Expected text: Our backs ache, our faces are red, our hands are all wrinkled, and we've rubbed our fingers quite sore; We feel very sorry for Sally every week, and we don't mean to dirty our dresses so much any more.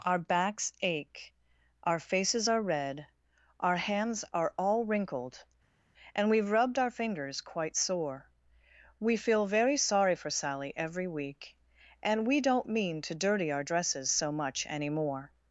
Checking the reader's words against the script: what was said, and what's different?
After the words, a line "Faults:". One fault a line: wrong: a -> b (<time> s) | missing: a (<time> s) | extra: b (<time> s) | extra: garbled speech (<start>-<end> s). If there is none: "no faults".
Our backs ache, our faces are red, our hands are all wrinkled, and we've rubbed our fingers quite sore; We feel very sorry for Sally every week, and we don't mean to dirty our dresses so much any more.
Faults:
no faults